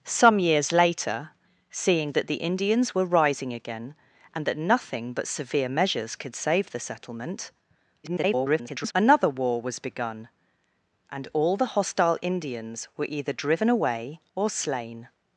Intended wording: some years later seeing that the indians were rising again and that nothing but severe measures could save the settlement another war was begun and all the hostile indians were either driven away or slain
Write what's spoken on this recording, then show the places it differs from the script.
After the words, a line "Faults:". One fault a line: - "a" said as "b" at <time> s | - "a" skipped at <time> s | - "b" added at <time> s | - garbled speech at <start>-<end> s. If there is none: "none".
some years later seeing that the indians were rising again and that nothing but severe measures could save the settlement [garbled] another war was begun and all the hostile indians were either driven away or slain
Faults:
- garbled speech at 8.0-8.9 s